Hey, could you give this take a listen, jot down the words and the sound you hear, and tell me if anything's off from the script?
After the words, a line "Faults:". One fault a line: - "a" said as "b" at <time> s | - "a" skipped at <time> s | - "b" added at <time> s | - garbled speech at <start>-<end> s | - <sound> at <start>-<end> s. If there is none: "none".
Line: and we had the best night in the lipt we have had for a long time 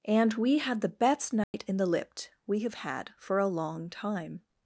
and we had the best night in the lipt we have had for a long time
Faults:
- dropout at 1.4-1.5 s